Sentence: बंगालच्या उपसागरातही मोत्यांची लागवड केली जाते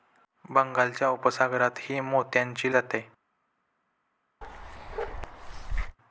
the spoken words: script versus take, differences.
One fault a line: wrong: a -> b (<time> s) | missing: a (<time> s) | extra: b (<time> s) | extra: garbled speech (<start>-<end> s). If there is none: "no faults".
missing: लागवड केली (2.7 s)